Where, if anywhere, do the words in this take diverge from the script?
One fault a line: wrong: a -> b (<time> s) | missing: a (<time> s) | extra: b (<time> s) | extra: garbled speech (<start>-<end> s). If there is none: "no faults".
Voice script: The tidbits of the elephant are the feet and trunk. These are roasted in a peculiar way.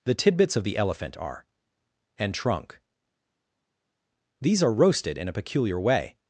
missing: the feet (1.4 s)